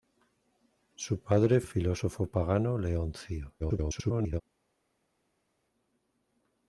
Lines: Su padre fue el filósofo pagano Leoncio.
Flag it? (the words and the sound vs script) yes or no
yes